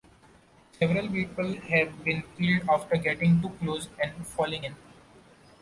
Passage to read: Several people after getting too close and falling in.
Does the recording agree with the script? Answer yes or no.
no